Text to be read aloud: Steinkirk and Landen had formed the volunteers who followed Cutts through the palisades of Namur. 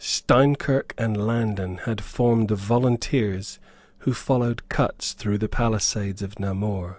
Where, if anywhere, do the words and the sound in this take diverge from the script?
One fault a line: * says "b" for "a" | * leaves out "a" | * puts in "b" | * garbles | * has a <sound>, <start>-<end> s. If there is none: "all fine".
all fine